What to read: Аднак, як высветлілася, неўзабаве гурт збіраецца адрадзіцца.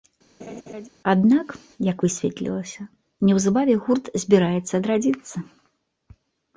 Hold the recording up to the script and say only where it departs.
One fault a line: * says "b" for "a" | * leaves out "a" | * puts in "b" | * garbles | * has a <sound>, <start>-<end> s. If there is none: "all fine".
* has a laugh, 0.4-0.9 s